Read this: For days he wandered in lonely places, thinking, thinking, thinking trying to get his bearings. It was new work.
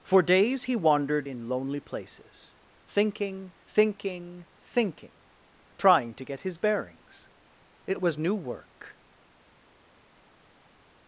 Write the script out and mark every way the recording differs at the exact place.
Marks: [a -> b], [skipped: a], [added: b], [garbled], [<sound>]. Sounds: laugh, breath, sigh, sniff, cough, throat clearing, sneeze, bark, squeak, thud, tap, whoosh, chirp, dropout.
For days he wandered in lonely places, thinking, thinking, thinking trying to get his bearings. It was new work.